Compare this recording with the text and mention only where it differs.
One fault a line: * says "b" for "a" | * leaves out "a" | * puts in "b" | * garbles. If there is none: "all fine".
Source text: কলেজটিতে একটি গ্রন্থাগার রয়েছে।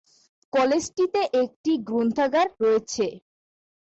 all fine